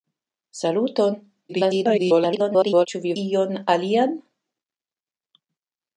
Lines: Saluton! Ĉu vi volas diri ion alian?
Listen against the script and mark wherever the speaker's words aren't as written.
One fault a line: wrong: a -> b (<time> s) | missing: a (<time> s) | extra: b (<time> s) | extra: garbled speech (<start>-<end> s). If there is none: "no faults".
extra: garbled speech (1.5-2.9 s)
missing: volas diri (3.1 s)